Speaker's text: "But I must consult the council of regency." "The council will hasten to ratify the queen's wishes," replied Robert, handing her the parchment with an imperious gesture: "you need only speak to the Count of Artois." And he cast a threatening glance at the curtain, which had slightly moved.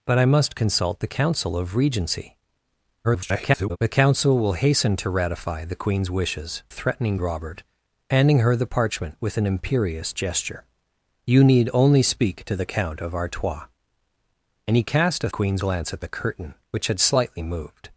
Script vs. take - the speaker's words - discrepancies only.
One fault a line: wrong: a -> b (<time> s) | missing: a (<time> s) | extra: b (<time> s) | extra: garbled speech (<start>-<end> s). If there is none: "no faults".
extra: garbled speech (3.0-3.8 s)
wrong: replied -> threatening (6.7 s)
wrong: threatening -> queen's (15.3 s)